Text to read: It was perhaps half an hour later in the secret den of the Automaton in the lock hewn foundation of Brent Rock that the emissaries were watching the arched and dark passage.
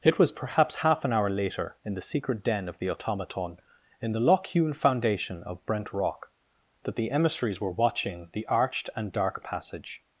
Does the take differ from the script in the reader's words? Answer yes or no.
no